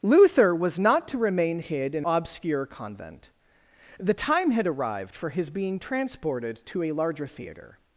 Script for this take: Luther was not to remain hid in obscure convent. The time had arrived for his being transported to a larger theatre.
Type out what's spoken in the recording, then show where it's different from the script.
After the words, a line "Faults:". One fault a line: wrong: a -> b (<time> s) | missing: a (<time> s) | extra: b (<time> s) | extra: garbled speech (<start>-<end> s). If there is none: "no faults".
Luther was not to remain hid in obscure convent. The time had arrived for his being transported to a larger theatre.
Faults:
no faults